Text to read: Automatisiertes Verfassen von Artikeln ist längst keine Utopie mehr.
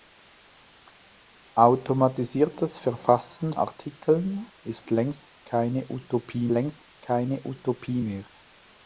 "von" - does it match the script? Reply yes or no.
no